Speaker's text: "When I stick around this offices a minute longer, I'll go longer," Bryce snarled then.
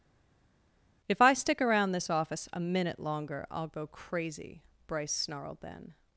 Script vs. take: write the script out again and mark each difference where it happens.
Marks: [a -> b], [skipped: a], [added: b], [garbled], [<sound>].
["When -> If] I stick around this [offices -> office] a minute longer, I'll go [longer," -> crazy] Bryce snarled then.